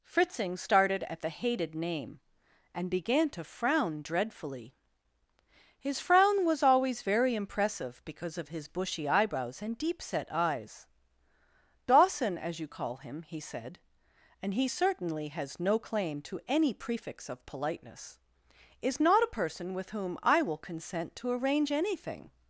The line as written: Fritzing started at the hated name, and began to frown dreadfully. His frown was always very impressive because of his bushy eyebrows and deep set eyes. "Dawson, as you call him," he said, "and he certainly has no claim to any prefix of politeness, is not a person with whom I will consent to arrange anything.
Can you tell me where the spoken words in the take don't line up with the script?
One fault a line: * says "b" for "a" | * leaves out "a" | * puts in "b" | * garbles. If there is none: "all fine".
all fine